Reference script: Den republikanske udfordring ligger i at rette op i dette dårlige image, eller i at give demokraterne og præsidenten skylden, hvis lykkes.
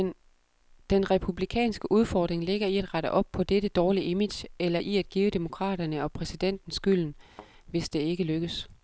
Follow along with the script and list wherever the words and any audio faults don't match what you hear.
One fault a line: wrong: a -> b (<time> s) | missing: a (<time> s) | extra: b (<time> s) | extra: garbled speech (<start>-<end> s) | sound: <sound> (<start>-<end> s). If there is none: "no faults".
wrong: i -> på (3.3 s)
sound: thud (7.3-7.5 s)
extra: det ikke (7.9 s)